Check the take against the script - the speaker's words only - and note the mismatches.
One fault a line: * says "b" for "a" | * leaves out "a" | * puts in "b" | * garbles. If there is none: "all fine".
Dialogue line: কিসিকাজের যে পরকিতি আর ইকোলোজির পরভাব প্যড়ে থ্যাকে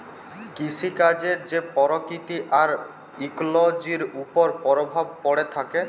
* puts in "উপর"